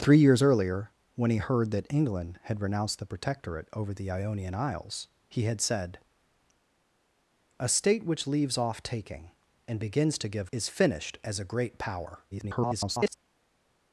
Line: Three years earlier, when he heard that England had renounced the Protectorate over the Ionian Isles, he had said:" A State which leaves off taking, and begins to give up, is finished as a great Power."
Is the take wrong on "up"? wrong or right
wrong